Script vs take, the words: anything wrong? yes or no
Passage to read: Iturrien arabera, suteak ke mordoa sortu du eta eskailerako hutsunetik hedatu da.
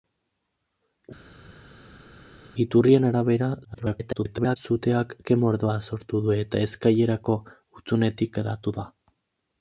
yes